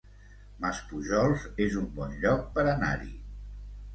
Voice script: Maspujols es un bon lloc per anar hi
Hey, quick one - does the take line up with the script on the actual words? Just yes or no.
yes